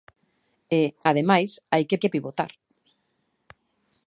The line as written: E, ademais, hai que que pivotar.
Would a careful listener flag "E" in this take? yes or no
no